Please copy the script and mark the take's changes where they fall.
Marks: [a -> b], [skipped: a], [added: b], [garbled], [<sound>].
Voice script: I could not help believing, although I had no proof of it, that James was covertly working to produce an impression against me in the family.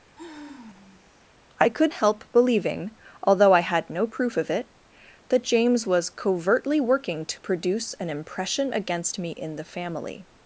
[sigh] I could [skipped: not] help believing, although I had no proof of it, that James was covertly working to produce an impression against me in the family.